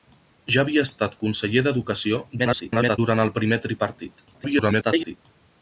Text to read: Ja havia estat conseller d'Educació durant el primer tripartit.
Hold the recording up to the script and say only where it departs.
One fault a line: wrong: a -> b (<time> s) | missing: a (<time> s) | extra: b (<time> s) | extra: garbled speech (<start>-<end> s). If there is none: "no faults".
extra: garbled speech (2.4-3.0 s)
extra: garbled speech (4.3-5.2 s)